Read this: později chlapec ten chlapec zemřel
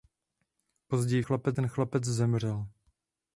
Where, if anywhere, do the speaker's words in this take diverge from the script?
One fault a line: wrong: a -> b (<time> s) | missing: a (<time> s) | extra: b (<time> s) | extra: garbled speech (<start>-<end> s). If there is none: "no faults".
no faults